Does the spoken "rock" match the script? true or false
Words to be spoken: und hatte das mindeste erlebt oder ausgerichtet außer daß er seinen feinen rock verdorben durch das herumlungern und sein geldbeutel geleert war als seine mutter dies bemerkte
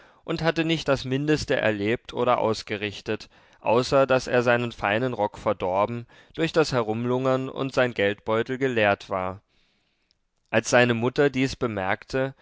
true